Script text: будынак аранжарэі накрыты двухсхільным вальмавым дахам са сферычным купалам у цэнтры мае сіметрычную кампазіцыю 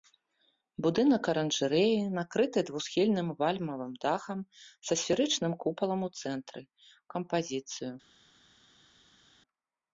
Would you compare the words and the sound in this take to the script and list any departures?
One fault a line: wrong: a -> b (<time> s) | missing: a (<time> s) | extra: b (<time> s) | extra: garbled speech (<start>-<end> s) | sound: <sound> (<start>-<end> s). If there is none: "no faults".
missing: мае сіметрычную (6.6 s)